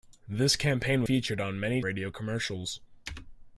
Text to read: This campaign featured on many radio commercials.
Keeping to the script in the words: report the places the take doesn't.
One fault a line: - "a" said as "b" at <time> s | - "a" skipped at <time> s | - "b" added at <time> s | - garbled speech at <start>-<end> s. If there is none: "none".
none